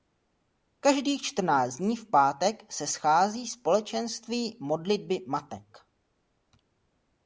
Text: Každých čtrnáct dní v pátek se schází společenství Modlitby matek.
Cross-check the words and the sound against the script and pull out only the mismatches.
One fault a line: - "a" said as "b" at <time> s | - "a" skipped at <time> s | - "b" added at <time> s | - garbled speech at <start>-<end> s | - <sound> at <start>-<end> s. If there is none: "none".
none